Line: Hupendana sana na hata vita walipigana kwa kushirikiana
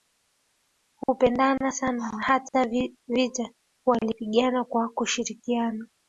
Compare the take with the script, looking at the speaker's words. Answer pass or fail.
pass